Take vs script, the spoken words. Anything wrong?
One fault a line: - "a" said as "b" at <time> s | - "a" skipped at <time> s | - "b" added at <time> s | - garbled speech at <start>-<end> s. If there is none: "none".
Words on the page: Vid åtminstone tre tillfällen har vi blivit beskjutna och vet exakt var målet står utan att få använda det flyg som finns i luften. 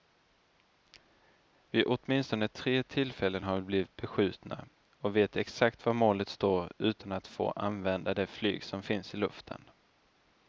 none